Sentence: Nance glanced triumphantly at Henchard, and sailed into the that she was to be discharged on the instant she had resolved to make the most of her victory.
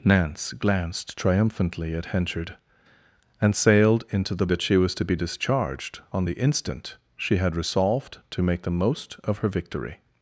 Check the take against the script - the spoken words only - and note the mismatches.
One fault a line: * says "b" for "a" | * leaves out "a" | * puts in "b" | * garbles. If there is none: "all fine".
all fine